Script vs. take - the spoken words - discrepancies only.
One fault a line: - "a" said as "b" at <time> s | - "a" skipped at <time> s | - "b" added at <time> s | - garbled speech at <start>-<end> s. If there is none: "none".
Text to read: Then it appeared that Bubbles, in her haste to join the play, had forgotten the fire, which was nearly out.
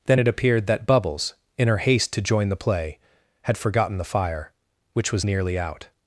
none